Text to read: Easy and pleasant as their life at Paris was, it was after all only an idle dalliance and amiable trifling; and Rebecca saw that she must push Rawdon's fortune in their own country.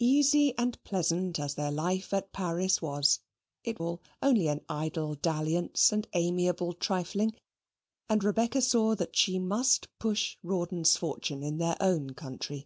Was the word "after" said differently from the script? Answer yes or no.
yes